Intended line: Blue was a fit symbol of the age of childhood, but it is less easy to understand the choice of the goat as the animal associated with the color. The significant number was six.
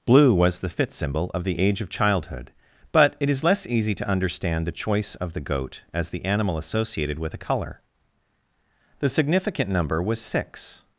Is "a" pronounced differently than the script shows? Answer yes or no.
yes